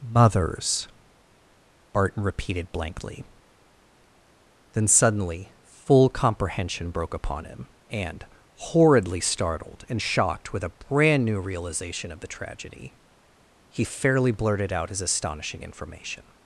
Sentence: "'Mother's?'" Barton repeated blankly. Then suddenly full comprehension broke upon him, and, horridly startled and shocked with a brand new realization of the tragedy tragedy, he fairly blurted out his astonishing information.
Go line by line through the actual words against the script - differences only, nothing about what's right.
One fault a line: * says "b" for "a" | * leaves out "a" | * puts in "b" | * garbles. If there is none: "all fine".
* leaves out "tragedy"